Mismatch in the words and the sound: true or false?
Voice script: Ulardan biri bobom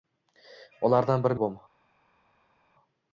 false